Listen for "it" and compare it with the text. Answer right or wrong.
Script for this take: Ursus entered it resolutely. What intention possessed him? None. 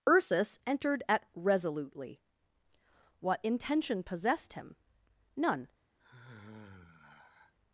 wrong